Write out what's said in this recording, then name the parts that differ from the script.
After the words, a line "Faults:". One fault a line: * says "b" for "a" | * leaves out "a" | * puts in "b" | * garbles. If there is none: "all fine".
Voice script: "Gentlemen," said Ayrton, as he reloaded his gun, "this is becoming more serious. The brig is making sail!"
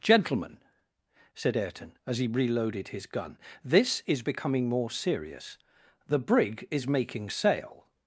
"Gentlemen," said Ayrton, as he reloaded his gun, "this is becoming more serious. The brig is making sail!"
Faults:
all fine